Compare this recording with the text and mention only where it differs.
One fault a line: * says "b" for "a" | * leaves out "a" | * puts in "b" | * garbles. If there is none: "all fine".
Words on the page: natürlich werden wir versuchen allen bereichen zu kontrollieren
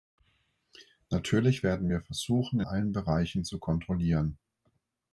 all fine